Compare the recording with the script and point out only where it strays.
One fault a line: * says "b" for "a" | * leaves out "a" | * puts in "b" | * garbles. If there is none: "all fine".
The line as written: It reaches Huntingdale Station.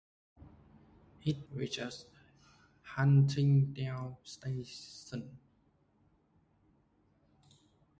all fine